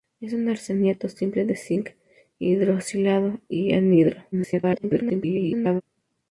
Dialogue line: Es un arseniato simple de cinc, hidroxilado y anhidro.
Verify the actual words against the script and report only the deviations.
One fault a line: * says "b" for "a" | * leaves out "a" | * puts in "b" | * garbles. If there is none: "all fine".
* garbles